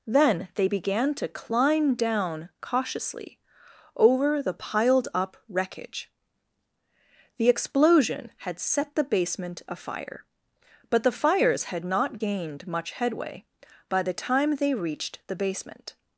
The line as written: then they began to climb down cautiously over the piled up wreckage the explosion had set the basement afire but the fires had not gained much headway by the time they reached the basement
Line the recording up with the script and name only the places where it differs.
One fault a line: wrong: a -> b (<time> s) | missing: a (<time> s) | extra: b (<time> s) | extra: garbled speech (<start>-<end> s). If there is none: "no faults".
no faults